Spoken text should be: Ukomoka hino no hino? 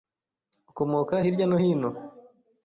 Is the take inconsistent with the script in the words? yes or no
yes